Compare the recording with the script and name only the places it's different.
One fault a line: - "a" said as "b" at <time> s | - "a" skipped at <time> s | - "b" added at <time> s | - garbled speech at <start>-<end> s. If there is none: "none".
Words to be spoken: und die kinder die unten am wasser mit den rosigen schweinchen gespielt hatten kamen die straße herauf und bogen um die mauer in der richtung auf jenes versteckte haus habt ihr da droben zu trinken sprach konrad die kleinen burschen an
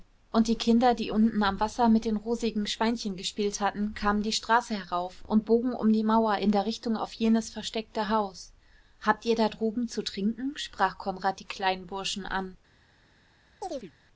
none